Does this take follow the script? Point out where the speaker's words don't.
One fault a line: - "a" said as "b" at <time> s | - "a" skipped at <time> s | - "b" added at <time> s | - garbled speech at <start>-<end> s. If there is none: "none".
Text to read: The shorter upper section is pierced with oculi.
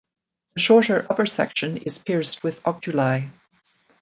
none